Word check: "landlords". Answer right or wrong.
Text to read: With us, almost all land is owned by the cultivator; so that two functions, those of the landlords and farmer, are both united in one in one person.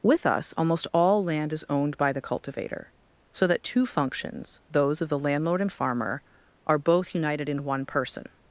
wrong